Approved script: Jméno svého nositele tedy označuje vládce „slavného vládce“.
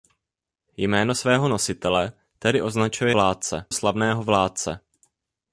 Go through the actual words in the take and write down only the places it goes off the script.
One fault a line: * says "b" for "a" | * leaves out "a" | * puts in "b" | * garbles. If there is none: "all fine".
all fine